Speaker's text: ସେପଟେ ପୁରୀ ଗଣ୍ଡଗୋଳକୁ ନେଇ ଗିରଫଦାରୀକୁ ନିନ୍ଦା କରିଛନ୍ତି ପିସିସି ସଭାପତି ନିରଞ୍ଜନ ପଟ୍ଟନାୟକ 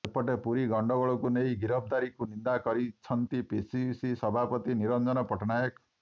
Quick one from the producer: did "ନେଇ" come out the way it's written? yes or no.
yes